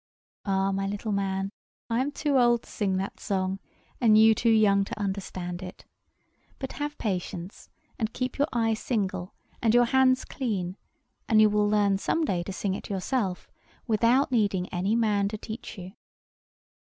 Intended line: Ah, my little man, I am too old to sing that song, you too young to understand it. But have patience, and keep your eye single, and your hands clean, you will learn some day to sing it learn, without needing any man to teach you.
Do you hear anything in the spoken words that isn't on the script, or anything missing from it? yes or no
yes